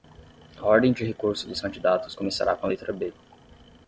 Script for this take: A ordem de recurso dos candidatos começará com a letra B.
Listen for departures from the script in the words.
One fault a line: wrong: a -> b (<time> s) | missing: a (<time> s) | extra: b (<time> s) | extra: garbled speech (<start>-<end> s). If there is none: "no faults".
no faults